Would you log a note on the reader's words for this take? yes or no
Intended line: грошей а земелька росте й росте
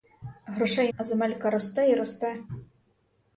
no